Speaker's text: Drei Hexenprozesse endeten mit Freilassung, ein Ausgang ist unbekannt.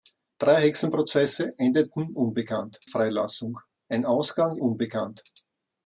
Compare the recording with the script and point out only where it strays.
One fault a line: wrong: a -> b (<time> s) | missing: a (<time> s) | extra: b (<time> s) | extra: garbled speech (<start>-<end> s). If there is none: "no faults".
wrong: mit -> unbekannt (2.1 s)
missing: ist (4.6 s)